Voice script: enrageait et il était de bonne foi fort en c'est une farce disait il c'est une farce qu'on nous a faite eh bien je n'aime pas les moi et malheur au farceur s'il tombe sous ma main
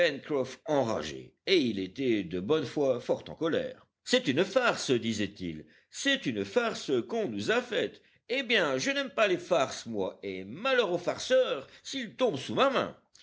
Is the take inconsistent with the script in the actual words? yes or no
yes